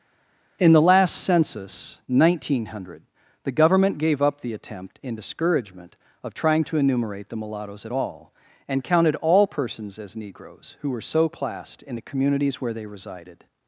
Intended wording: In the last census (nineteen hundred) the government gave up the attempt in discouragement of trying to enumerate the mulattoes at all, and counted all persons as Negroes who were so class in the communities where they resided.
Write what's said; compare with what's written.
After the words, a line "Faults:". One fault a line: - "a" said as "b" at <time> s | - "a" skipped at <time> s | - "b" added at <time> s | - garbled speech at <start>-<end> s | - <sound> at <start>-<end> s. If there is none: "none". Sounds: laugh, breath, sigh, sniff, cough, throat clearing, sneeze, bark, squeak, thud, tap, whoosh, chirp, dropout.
In the last census (nineteen hundred) the government gave up the attempt in discouragement of trying to enumerate the mulattoes at all, and counted all persons as Negroes who were so classed in the communities where they resided.
Faults:
- "class" said as "classed" at 11.3 s